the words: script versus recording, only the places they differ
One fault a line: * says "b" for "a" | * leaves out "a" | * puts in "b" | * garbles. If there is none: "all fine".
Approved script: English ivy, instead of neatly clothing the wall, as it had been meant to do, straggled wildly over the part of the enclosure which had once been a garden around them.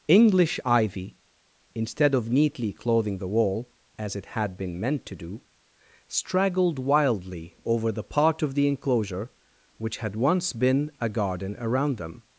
all fine